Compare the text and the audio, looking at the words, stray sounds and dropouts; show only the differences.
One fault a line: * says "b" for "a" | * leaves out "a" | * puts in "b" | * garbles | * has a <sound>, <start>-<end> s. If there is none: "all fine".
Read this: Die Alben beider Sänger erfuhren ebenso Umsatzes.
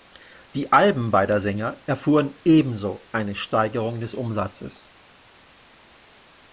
* puts in "eine Steigerung des"